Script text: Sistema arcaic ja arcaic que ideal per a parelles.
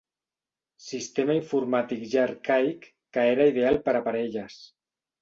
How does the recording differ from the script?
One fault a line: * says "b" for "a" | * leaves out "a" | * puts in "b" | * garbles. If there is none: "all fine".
* says "informàtic" for "arcaic"
* puts in "era"